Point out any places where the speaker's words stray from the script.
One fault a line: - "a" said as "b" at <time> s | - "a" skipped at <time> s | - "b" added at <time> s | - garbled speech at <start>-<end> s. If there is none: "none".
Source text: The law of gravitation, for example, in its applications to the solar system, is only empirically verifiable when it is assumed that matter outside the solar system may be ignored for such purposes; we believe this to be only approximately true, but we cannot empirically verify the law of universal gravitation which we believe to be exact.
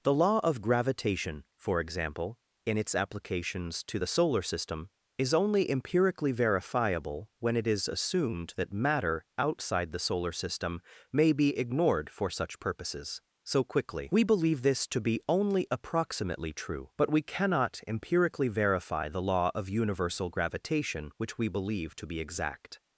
- "so quickly" added at 13.4 s